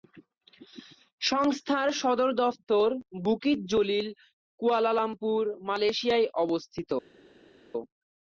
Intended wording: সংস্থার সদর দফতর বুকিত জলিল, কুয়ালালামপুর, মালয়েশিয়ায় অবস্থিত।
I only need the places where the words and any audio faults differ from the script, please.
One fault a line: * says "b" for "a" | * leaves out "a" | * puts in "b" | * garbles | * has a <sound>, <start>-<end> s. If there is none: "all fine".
all fine